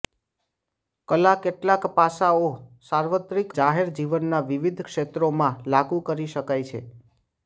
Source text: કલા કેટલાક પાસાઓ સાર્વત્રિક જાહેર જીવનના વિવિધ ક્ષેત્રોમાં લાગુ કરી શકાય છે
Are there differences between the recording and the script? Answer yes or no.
no